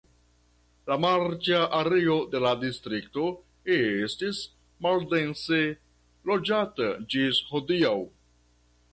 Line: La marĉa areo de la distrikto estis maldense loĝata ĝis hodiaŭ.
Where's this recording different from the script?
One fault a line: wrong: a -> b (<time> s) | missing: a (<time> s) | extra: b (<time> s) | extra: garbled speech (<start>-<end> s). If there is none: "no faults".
no faults